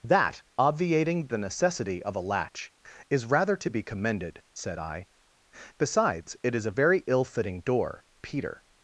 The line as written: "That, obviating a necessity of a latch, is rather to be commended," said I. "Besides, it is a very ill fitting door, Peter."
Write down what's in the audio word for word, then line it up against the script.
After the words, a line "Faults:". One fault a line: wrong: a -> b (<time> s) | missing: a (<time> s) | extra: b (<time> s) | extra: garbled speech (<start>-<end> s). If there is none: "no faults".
"That, obviating the necessity of a latch, is rather to be commended," said I. "Besides, it is a very ill fitting door, Peter."
Faults:
wrong: a -> the (1.3 s)